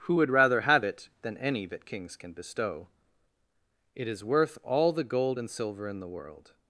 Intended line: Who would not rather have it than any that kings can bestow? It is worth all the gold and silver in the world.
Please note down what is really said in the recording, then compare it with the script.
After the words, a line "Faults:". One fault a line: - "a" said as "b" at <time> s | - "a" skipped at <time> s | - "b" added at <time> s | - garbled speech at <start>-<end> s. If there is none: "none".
Who would rather have it than any that kings can bestow? It is worth all the gold and silver in the world.
Faults:
- "not" skipped at 0.3 s